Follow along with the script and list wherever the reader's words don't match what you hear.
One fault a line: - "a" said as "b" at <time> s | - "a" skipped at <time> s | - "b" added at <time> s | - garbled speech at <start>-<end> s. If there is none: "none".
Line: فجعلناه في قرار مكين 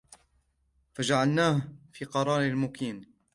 none